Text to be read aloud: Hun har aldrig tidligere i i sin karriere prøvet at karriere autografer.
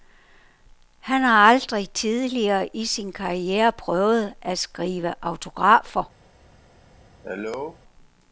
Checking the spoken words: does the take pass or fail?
fail